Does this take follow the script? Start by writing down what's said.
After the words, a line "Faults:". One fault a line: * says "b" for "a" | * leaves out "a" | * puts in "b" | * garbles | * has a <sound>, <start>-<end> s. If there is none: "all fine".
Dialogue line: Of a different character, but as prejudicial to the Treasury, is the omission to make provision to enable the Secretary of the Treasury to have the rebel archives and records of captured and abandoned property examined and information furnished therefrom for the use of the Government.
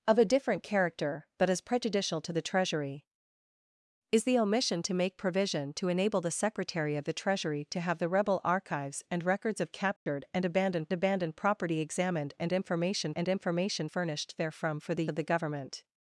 Of a different character, but as prejudicial to the Treasury, is the omission to make provision to enable the Secretary of the Treasury to have the rebel archives and records of captured and abandoned abandoned property examined and information and information furnished therefrom for the of the Government.
Faults:
* has a dropout, 10.0-10.1 s
* puts in "abandoned"
* puts in "and information"
* leaves out "use"